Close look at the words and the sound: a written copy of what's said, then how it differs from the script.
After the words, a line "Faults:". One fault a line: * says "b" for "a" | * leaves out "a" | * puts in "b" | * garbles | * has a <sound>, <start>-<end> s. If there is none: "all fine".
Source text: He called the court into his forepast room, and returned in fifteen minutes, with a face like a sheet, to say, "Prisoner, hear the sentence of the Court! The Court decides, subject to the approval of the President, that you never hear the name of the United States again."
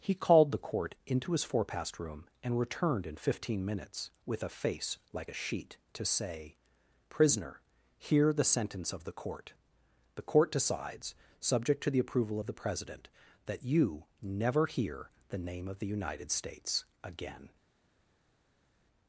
He called the court into his forepast room, and returned in fifteen minutes, with a face like a sheet, to say, "Prisoner, hear the sentence of the Court! The Court decides, subject to the approval of the President, that you never hear the name of the United States again."
Faults:
all fine